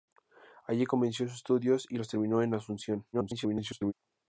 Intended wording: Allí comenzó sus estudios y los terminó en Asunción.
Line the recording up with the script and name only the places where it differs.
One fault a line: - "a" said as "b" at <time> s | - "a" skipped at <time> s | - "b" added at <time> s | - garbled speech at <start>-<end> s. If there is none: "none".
- garbled speech at 3.1-3.9 s